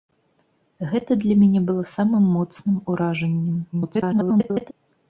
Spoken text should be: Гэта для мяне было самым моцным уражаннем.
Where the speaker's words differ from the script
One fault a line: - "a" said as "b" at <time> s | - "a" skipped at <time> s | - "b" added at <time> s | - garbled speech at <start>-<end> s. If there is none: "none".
- garbled speech at 3.7-4.7 s